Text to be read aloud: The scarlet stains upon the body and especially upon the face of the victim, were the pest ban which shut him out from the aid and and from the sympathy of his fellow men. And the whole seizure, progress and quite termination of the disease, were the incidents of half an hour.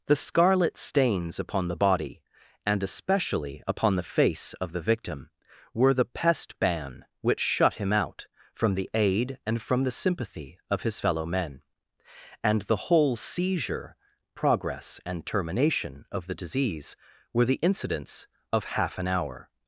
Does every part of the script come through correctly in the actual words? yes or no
no